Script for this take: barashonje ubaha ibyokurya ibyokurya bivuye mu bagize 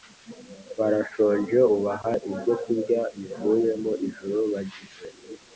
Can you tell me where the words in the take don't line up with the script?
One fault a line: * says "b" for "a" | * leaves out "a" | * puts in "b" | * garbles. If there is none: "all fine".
* leaves out "ibyokurya"
* puts in "ijuru"